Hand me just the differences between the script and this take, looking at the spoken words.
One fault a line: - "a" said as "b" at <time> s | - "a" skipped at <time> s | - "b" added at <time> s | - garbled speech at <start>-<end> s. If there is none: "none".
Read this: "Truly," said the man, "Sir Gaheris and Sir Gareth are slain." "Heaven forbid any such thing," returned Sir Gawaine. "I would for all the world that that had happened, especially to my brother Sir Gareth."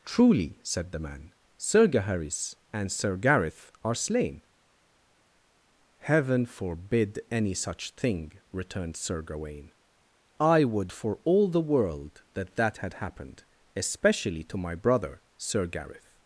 none